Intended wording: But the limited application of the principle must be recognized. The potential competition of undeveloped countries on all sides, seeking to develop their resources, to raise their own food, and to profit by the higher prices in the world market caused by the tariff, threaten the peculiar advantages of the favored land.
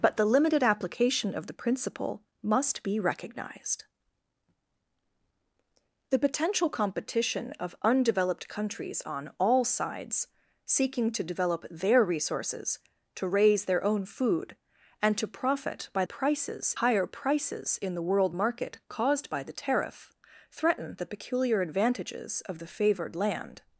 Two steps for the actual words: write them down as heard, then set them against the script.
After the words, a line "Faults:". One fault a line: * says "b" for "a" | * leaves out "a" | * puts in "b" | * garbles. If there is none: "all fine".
But the limited application of the principle must be recognized. The potential competition of undeveloped countries on all sides, seeking to develop their resources, to raise their own food, and to profit by prices higher prices in the world market caused by the tariff, threaten the peculiar advantages of the favored land.
Faults:
* says "prices" for "the"